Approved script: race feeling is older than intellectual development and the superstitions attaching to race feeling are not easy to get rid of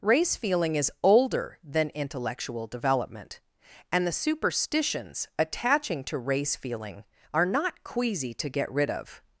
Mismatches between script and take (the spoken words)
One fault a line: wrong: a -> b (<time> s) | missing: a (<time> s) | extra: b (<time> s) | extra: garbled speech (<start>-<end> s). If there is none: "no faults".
wrong: easy -> queasy (7.8 s)